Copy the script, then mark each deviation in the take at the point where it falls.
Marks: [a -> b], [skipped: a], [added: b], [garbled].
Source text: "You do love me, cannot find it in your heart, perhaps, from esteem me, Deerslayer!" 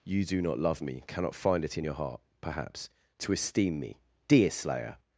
"You do [added: not] love me, cannot find it in your heart, perhaps, [from -> to] esteem me, Deerslayer!"